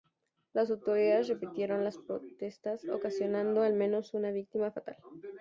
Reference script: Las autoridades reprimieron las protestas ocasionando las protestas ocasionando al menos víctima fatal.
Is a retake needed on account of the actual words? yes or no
yes